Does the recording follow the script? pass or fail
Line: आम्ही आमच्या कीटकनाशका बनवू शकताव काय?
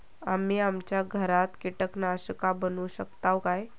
fail